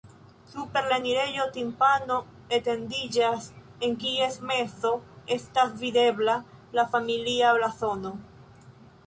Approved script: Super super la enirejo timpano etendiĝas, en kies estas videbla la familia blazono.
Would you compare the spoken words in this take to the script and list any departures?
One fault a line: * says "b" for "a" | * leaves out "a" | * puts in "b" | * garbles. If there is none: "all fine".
* leaves out "super"
* puts in "mezo"